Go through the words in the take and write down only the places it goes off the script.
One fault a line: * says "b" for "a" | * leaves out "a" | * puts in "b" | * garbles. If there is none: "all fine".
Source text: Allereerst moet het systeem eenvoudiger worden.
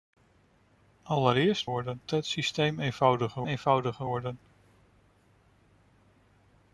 * says "worden" for "moet"
* puts in "eenvoudiger"